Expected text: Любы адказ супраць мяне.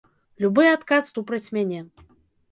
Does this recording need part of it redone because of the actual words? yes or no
no